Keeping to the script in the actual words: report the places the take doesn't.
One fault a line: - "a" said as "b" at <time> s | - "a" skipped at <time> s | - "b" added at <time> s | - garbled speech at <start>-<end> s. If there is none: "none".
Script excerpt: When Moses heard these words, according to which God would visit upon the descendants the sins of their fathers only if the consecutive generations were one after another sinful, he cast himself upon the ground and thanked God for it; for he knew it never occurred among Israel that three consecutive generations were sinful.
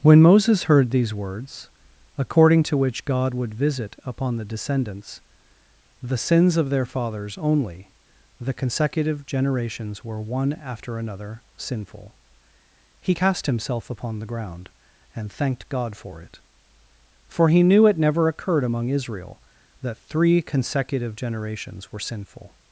- "if" skipped at 7.9 s